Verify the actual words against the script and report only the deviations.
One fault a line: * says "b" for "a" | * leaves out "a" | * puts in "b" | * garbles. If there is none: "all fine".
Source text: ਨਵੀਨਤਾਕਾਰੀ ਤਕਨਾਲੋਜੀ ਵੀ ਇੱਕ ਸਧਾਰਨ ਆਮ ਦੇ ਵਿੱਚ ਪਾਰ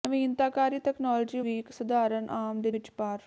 all fine